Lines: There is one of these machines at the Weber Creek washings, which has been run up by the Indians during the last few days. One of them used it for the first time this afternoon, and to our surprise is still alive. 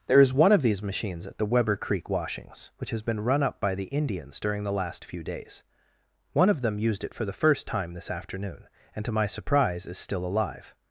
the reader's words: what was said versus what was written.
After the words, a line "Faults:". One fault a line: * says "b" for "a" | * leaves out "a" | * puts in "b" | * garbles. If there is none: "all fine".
There is one of these machines at the Weber Creek washings, which has been run up by the Indians during the last few days. One of them used it for the first time this afternoon, and to my surprise is still alive.
Faults:
* says "my" for "our"